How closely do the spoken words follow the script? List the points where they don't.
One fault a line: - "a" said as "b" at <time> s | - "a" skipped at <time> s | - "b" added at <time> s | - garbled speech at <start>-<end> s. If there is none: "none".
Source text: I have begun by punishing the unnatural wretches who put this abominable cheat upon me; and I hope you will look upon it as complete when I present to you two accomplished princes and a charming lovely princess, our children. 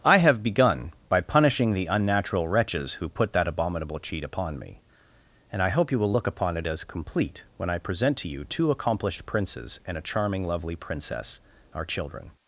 - "this" said as "that" at 3.3 s